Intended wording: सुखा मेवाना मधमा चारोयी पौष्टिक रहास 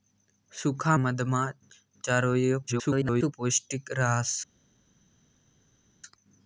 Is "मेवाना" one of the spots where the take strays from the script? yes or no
yes